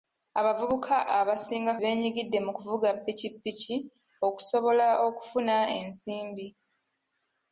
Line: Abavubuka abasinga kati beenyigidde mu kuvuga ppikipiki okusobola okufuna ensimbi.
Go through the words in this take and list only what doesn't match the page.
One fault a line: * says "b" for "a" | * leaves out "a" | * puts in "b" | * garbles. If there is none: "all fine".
* leaves out "kati"